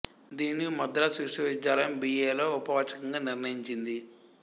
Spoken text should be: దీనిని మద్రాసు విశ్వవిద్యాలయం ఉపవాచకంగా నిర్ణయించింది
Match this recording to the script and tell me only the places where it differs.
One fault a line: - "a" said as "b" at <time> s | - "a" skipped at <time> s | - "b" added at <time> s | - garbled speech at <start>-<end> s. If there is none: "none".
- "బి ఎ లో" added at 2.0 s